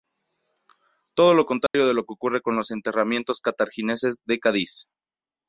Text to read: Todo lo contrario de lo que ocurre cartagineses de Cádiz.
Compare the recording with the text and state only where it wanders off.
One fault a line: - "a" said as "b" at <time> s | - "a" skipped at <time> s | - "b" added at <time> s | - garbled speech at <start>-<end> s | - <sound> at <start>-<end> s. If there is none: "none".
- dropout at 1.7-1.7 s
- "con los enterramientos" added at 2.4 s